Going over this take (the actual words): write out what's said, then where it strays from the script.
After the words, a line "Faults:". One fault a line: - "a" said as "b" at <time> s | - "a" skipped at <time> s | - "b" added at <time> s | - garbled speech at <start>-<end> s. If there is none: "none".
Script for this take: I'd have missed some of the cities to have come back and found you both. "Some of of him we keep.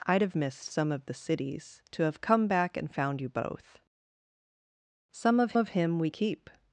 I'd have missed some of the cities to have come back and found you both. "Some of of him we keep.
Faults:
none